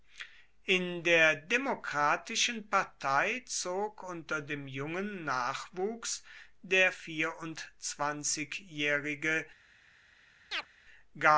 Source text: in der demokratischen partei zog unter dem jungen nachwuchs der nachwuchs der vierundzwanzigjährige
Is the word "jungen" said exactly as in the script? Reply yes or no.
yes